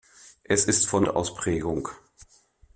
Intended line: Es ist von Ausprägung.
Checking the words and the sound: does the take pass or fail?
pass